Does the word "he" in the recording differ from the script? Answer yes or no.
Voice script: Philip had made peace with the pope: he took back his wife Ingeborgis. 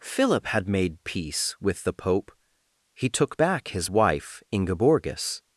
no